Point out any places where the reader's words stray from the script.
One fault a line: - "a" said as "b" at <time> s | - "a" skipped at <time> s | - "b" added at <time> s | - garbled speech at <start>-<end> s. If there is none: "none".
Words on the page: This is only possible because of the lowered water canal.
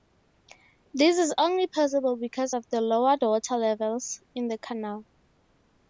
- "levels in the" added at 3.6 s